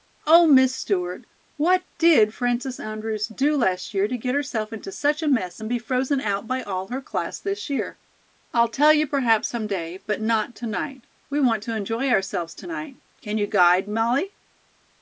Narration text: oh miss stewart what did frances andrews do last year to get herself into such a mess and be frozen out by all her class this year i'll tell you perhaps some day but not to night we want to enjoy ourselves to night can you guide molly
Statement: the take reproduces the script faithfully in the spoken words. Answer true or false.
true